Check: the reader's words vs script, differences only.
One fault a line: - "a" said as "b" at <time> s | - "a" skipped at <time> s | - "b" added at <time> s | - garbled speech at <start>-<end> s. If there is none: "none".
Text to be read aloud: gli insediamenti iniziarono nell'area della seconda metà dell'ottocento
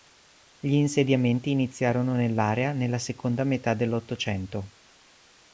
- "della" said as "nella" at 2.7 s